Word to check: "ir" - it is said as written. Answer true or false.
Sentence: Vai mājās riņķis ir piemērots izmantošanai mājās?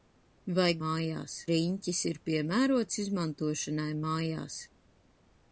true